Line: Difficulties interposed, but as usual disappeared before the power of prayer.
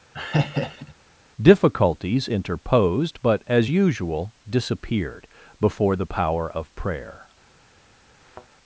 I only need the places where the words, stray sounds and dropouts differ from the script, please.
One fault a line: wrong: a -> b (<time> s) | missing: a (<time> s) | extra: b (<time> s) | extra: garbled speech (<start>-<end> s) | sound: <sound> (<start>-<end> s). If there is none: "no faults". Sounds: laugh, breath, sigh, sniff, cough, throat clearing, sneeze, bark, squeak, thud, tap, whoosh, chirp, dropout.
sound: laugh (0.1-0.9 s)
sound: thud (8.2-8.5 s)